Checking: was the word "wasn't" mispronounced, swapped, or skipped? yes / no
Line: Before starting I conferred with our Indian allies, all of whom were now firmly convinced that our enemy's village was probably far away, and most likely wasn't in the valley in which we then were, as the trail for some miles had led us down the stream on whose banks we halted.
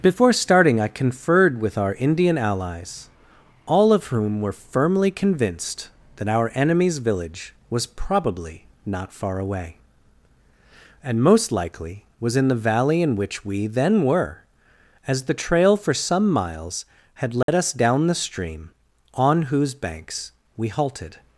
yes